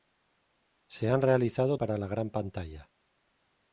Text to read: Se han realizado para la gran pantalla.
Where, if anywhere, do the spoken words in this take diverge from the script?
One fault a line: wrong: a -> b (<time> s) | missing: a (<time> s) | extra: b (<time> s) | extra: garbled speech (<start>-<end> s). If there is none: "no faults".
no faults